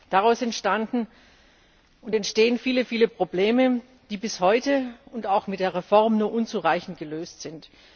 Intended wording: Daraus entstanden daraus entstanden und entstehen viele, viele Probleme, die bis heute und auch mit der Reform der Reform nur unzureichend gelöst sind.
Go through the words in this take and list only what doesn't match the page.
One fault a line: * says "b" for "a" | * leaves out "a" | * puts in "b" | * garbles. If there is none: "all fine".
* leaves out "daraus entstanden"
* leaves out "der Reform"